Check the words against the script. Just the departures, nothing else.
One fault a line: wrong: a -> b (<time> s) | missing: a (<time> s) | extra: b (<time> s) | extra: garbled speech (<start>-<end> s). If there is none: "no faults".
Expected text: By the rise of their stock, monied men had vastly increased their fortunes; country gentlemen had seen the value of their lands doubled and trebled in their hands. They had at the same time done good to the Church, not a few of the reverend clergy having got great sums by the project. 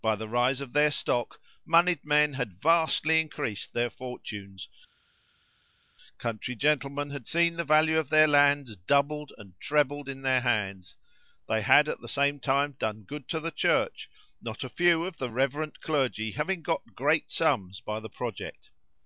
no faults